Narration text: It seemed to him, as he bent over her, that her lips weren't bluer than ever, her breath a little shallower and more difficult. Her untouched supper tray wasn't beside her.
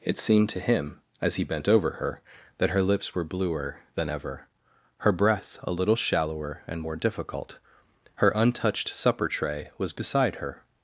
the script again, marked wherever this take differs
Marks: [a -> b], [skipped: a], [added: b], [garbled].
It seemed to him, as he bent over her, that her lips [weren't -> were] bluer than ever, her breath a little shallower and more difficult. Her untouched supper tray [wasn't -> was] beside her.